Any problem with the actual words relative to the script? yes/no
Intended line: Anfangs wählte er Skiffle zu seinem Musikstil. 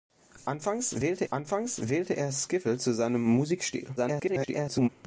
yes